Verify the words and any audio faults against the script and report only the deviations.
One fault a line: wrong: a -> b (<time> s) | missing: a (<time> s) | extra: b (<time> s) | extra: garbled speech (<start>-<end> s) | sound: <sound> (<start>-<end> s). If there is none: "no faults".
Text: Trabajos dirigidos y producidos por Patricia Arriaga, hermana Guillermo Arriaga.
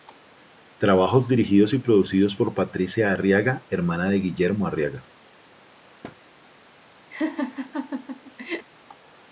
extra: de (4.1 s)
sound: thud (6.0-6.2 s)
sound: laugh (7.1-8.7 s)